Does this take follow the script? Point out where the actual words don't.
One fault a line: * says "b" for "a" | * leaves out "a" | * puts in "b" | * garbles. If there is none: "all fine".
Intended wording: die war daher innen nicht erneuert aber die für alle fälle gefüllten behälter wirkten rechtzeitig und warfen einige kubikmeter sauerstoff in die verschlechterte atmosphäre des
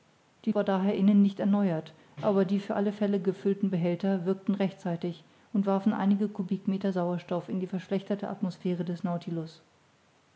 all fine